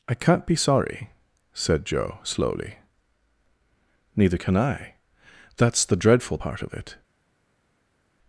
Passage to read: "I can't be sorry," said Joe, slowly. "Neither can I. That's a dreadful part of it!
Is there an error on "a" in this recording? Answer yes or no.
yes